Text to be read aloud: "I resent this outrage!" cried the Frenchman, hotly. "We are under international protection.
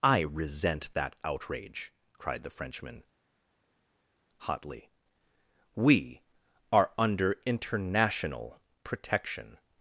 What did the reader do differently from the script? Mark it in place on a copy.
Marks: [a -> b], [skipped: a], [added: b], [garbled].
"I resent [this -> that] outrage!" cried the Frenchman, hotly. "We are under international protection.